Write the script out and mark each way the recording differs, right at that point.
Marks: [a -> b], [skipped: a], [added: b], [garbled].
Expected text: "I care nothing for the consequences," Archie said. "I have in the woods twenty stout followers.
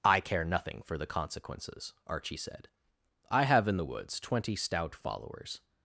"I care nothing for the consequences," Archie said. "I have in the woods twenty stout followers.